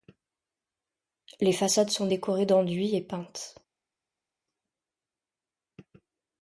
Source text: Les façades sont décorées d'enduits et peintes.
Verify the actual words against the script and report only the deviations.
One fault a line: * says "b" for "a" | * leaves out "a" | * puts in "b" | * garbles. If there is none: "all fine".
all fine